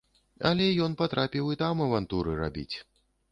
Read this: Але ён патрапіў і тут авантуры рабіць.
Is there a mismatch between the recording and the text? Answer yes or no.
yes